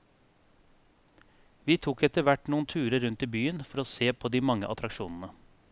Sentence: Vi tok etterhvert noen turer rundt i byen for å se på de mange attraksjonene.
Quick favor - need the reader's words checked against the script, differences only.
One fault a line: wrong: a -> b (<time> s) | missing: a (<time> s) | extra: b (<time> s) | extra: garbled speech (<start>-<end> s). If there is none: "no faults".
no faults